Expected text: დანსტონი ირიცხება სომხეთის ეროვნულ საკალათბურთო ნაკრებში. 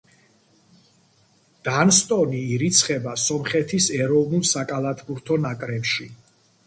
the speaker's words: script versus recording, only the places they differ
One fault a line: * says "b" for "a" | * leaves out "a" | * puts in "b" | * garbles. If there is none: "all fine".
all fine